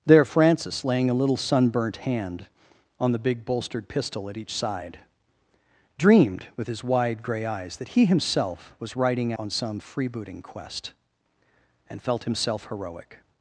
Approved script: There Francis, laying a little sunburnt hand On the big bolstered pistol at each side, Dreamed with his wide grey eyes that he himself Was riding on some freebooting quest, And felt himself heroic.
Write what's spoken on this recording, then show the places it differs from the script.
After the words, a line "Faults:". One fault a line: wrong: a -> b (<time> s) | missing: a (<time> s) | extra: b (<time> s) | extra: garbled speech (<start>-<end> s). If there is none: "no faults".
There Francis, laying a little sunburnt hand On the big bolstered pistol at each side, Dreamed with his wide grey eyes that he himself Was riding on some freebooting quest, And felt himself heroic.
Faults:
no faults